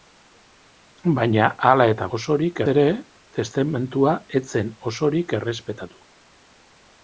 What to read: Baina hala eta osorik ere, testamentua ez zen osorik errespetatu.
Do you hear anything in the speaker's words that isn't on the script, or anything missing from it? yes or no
no